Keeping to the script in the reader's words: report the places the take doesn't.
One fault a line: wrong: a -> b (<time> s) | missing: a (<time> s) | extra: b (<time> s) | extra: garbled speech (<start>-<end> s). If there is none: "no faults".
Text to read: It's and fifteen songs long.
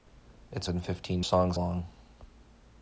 no faults